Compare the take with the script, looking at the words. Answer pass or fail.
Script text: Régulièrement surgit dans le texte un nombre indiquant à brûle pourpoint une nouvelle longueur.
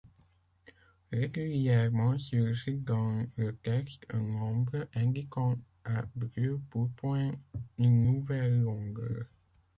pass